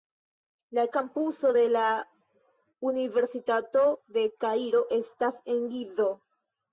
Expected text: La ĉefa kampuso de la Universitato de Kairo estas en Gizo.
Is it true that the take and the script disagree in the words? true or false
true